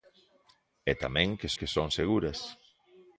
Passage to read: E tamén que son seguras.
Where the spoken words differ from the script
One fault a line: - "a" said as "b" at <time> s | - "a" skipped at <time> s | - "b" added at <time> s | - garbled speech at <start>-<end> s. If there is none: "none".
- "que" added at 1.6 s